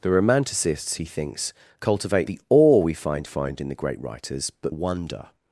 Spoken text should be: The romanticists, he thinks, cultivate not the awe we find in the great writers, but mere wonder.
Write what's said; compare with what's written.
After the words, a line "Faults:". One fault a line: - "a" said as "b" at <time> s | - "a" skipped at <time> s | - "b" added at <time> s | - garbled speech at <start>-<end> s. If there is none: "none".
The romanticists, he thinks, cultivate the awe we find find in the great writers, but wonder.
Faults:
- "not" skipped at 2.3 s
- "find" added at 3.2 s
- "mere" skipped at 4.7 s